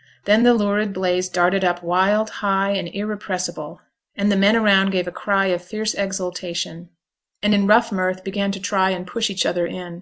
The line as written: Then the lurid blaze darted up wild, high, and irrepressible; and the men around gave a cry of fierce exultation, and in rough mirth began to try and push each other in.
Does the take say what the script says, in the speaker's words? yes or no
yes